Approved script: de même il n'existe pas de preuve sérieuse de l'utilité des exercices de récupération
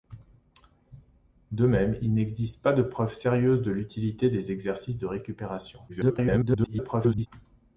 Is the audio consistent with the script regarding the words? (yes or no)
no